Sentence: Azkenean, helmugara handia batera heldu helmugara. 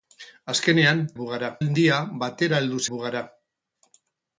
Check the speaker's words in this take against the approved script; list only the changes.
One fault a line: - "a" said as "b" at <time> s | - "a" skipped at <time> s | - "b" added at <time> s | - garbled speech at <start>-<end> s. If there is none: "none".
none